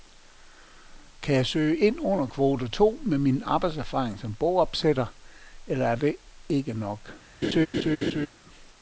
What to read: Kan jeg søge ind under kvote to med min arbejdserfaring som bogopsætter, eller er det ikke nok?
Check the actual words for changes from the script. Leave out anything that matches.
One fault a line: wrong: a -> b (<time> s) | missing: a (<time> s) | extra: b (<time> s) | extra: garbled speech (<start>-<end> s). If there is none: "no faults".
no faults